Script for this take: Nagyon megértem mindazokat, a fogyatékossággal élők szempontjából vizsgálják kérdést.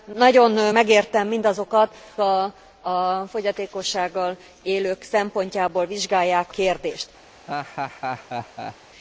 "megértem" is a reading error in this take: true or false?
false